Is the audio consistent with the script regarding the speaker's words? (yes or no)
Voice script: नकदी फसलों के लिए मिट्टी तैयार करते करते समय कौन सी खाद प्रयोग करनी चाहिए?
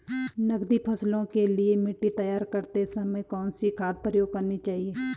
no